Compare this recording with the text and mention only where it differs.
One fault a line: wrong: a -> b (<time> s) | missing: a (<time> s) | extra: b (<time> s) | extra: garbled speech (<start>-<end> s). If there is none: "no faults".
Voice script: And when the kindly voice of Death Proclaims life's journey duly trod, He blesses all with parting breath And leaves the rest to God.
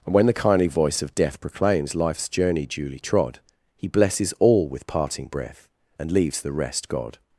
missing: to (6.9 s)